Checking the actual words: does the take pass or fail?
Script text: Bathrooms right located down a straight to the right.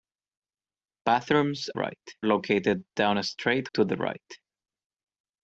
pass